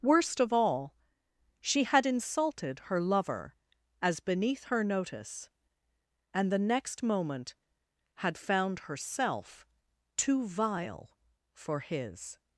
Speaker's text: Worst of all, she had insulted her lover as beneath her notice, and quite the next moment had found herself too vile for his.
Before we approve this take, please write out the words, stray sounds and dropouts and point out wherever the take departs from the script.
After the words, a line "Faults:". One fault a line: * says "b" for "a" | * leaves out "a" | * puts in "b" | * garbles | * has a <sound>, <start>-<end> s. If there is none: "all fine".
Worst of all, she had insulted her lover as beneath her notice, and the next moment had found herself too vile for his.
Faults:
* leaves out "quite"